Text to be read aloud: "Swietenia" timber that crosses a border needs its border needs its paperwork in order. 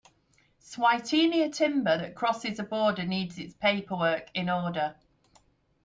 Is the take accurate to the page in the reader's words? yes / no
no